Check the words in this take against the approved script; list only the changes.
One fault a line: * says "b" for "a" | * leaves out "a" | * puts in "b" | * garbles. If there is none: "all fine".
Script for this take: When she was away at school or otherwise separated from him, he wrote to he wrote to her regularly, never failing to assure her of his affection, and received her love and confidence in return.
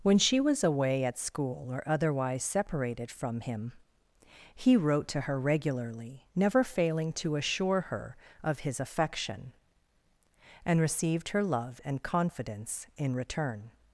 * leaves out "he wrote to"